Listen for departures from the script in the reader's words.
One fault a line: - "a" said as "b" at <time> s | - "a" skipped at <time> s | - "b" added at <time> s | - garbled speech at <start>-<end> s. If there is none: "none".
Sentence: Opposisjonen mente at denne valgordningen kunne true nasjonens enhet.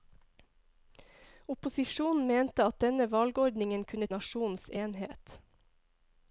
- "true" skipped at 4.1 s